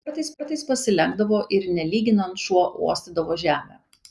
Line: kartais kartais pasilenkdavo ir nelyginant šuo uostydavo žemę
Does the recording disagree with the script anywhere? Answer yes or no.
no